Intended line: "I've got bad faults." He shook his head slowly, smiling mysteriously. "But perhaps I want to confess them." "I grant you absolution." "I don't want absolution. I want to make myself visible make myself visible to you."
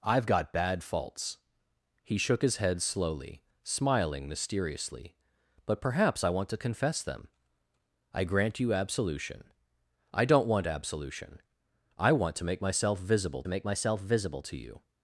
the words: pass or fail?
pass